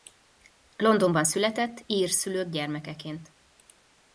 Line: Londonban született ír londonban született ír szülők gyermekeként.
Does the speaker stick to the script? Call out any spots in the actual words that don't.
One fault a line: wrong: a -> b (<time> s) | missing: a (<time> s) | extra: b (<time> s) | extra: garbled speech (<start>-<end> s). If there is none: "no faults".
missing: londonban született ír (2.1 s)